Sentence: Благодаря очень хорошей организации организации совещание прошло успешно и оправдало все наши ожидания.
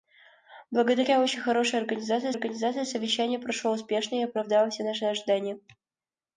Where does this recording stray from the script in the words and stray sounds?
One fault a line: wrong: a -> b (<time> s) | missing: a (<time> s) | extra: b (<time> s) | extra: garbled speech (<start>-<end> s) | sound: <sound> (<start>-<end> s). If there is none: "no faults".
no faults